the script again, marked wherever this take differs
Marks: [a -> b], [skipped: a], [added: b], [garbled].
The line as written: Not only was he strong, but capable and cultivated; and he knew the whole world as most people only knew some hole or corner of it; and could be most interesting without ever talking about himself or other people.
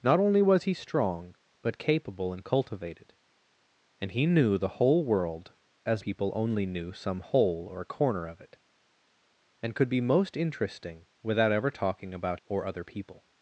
Not only was he strong, but capable and cultivated; and he knew the whole world as [skipped: most] people only knew some hole or corner of it; and could be most interesting without ever talking about [skipped: himself] or other people.